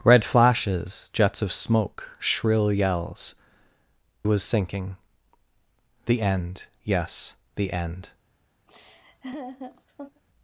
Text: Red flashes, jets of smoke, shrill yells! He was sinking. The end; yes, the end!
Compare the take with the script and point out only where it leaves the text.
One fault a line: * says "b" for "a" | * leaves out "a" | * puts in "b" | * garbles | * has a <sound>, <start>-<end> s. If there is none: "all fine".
* leaves out "He"
* has a laugh, 8.7-10.2 s